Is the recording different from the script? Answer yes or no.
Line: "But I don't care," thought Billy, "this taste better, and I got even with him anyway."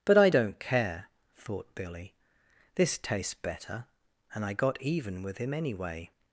yes